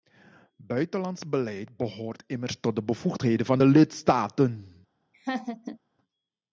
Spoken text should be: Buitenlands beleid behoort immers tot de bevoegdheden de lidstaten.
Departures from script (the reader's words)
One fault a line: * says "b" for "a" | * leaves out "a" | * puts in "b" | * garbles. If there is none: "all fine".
* puts in "van"